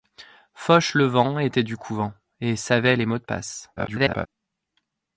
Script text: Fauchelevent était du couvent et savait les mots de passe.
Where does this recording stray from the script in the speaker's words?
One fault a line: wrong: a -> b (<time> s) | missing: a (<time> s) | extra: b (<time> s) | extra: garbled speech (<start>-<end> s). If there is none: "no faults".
extra: garbled speech (3.8-4.3 s)